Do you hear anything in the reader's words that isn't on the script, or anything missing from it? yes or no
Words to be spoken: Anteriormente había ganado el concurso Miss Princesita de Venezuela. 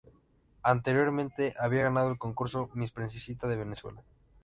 no